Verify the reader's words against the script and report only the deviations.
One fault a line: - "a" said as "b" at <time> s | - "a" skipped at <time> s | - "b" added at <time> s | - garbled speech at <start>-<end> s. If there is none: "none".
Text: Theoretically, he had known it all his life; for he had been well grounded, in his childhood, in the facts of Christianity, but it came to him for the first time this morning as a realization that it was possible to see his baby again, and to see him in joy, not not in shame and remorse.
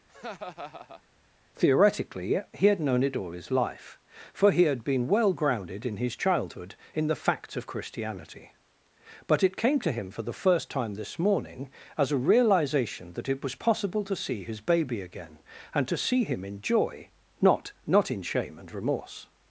none